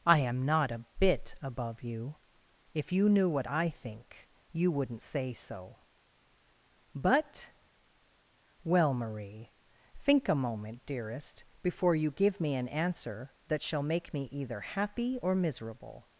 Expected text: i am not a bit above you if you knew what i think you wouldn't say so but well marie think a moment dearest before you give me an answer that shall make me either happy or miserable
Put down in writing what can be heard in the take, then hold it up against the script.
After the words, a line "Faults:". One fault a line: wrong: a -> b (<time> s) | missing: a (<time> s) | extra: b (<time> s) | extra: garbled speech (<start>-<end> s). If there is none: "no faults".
i am not a bit above you if you knew what i think you wouldn't say so but well marie think a moment dearest before you give me an answer that shall make me either happy or miserable
Faults:
no faults